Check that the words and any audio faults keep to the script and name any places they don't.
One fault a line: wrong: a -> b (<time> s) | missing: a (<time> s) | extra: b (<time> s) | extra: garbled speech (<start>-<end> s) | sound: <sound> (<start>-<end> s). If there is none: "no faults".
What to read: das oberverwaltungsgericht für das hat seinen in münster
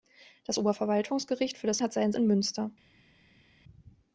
no faults